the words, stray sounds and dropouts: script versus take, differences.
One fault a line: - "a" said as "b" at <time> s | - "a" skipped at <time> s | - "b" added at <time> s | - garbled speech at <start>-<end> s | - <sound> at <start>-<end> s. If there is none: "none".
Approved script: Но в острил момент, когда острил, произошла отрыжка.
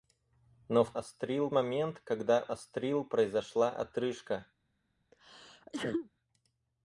- sneeze at 5.1-6.1 s